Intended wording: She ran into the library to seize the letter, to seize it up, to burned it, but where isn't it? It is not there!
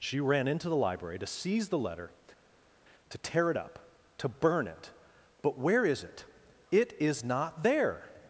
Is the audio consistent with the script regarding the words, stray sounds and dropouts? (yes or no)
no